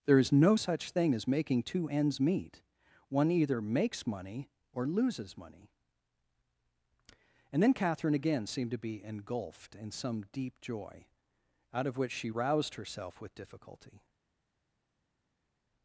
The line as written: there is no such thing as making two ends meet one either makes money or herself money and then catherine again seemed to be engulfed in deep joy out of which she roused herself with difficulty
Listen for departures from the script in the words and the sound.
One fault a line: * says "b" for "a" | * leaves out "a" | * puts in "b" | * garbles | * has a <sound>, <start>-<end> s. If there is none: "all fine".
* says "loses" for "herself"
* puts in "some"